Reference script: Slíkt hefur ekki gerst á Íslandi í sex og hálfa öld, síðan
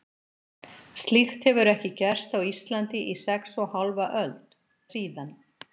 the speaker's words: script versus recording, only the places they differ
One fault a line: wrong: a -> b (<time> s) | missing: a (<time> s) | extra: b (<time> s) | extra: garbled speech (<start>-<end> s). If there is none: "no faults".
no faults